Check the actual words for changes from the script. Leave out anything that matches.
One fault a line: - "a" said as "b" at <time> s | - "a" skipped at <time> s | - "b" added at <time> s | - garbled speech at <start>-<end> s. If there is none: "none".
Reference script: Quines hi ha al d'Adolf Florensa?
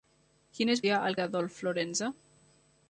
none